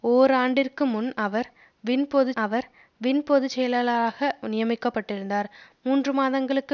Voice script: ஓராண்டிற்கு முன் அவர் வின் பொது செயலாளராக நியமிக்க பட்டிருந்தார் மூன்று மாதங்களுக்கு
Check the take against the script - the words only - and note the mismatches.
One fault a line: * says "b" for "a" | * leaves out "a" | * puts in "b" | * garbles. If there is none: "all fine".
* puts in "அவர் வின் பொது"